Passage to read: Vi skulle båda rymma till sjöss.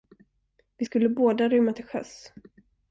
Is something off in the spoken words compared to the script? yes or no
no